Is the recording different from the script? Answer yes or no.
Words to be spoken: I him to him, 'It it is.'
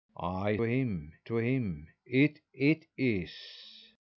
no